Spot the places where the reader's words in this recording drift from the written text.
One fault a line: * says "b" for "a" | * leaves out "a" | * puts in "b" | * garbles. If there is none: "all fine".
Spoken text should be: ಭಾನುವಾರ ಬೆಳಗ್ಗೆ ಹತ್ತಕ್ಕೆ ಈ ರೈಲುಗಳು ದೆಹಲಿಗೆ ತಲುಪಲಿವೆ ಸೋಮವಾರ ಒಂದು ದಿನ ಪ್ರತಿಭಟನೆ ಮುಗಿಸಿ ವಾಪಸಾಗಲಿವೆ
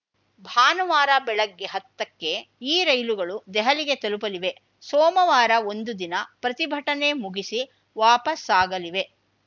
all fine